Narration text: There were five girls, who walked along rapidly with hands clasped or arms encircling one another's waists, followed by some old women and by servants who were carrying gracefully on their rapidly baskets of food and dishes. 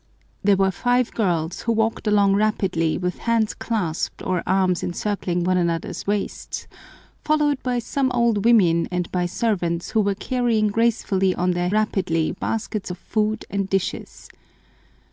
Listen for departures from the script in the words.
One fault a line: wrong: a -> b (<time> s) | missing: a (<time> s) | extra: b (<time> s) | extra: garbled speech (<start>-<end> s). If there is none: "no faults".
no faults